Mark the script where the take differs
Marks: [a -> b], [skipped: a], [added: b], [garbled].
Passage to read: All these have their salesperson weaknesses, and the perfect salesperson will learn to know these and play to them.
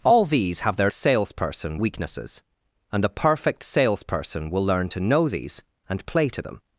All these have their salesperson weaknesses, and the perfect salesperson will learn to know these and play to them.